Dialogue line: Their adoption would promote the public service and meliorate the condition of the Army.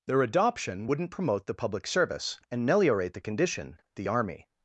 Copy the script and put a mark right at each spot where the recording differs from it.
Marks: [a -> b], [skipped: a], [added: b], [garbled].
Their adoption [would -> wouldn't] promote the public service and meliorate the condition [skipped: of] the Army.